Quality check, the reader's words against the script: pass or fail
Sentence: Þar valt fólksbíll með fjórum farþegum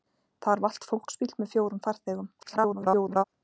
fail